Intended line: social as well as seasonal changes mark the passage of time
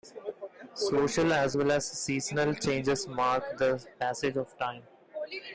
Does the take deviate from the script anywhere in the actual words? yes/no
no